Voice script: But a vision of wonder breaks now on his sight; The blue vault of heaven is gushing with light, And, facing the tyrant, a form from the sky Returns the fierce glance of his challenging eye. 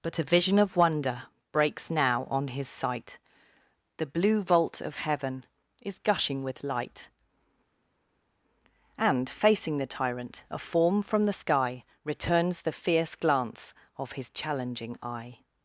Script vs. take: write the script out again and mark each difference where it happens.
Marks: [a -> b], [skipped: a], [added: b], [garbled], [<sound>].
But a vision of wonder breaks now on his sight; The blue vault of heaven is gushing with light, And, facing the tyrant, a form from the sky Returns the fierce glance of his challenging eye.